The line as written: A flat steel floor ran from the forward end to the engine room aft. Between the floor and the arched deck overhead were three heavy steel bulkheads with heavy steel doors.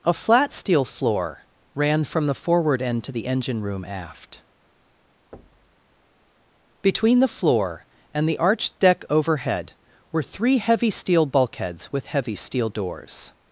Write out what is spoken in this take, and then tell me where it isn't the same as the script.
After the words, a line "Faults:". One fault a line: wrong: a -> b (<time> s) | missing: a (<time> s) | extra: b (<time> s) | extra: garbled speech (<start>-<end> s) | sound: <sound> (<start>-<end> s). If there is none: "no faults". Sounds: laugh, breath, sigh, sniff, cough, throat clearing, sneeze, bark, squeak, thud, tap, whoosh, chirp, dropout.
A flat steel floor ran from the forward end to the engine room aft. Between the floor and the arched deck overhead were three heavy steel bulkheads with heavy steel doors.
Faults:
sound: thud (5.3-5.8 s)